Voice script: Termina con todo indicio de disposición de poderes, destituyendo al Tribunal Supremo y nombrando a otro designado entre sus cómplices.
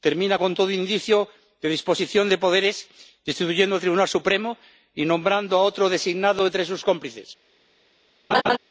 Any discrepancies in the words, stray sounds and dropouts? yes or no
yes